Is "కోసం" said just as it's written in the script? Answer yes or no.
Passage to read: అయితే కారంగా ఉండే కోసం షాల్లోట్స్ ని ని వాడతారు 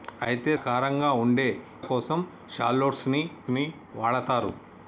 yes